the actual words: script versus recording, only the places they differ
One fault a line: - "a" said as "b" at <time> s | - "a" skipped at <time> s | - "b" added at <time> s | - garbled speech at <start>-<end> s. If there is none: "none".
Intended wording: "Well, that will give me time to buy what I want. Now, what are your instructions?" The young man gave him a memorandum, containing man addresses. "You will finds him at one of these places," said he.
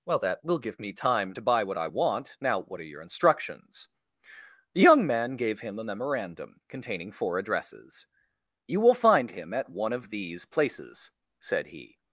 - "man" said as "four" at 7.1 s
- "finds" said as "find" at 8.9 s